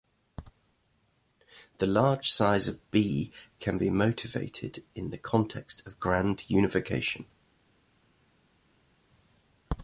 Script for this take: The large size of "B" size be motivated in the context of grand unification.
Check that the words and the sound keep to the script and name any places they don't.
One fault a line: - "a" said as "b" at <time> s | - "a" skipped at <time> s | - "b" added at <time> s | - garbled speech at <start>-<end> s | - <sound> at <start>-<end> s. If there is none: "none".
- "size" said as "can" at 3.6 s